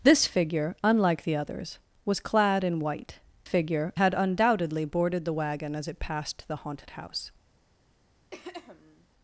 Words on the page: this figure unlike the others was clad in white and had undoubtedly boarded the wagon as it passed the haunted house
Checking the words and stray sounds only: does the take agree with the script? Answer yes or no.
no